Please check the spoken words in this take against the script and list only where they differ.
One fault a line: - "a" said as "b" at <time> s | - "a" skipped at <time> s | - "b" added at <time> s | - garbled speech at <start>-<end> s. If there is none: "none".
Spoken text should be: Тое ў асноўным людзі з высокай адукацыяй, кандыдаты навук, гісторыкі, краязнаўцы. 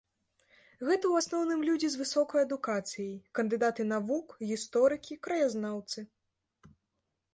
- "Тое" said as "Гэта" at 0.9 s